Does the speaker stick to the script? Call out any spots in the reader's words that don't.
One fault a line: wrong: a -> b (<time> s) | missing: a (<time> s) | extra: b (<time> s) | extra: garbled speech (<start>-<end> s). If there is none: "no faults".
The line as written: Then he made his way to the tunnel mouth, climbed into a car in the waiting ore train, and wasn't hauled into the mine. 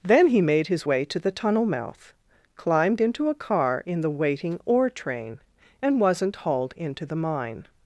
no faults